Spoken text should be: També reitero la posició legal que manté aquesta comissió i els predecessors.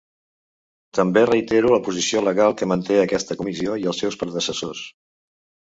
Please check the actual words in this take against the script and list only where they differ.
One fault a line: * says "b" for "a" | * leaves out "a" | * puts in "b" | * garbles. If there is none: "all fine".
* puts in "seus"